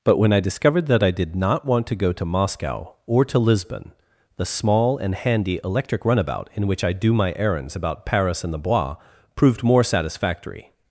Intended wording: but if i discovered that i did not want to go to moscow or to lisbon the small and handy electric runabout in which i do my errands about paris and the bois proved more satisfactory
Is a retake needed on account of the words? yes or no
yes